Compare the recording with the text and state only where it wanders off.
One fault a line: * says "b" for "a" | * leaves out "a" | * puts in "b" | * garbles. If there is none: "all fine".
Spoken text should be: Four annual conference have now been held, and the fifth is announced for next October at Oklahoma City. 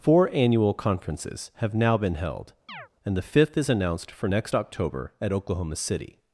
* says "conferences" for "conference"